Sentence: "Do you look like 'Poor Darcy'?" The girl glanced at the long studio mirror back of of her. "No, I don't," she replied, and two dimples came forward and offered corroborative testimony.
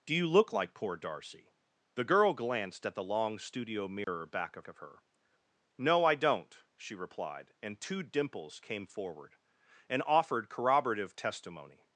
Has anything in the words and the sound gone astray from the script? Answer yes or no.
yes